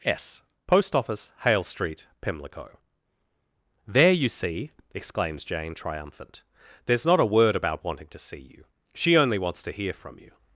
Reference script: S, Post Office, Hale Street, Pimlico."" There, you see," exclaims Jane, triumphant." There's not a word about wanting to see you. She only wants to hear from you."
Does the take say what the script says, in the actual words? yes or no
yes